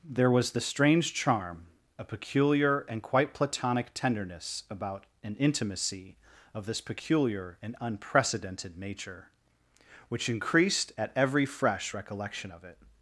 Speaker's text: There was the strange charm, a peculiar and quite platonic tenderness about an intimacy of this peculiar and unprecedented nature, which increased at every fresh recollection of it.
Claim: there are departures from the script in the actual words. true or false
false